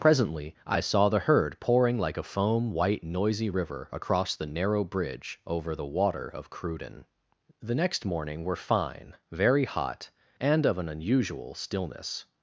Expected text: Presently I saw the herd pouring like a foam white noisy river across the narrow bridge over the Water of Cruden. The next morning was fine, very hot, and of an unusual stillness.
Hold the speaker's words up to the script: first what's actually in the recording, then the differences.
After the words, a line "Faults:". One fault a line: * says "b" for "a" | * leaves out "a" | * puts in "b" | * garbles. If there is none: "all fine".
Presently I saw the herd pouring like a foam white noisy river across the narrow bridge over the Water of Cruden. The next morning were fine, very hot, and of an unusual stillness.
Faults:
* says "were" for "was"